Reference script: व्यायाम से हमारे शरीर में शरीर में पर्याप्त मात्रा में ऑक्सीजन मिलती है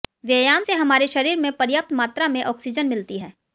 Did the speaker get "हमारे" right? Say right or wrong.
right